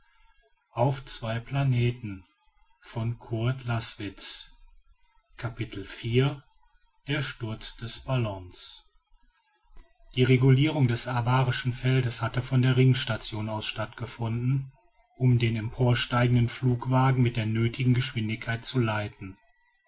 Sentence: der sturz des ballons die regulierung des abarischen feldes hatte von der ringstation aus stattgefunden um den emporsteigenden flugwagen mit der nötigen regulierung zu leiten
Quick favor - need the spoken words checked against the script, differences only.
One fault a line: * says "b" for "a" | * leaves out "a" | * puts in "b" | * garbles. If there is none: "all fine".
* says "geschwindigkeit" for "regulierung"